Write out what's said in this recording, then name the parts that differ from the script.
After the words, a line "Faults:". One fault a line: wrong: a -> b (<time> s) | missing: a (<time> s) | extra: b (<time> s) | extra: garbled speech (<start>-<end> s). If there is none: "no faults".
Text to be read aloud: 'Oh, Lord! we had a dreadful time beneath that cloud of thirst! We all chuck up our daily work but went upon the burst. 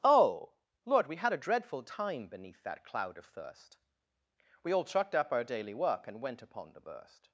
'Oh, Lord! we had a dreadful time beneath that cloud of thirst! We all chucked up our daily work and went upon the burst.
Faults:
wrong: chuck -> chucked (4.9 s)
wrong: but -> and (6.1 s)